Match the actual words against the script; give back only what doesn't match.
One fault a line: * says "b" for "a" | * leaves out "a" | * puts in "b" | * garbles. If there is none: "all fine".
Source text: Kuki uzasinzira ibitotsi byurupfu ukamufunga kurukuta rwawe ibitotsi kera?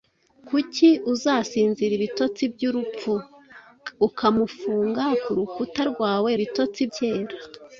all fine